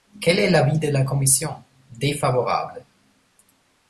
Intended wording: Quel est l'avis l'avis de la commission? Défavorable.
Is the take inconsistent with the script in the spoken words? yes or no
yes